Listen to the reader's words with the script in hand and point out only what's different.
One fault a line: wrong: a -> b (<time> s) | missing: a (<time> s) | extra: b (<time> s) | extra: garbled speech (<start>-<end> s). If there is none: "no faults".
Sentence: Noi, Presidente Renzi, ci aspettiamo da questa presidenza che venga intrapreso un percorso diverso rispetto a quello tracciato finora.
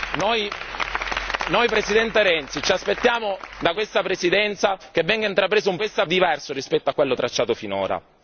wrong: percorso -> questa (5.8 s)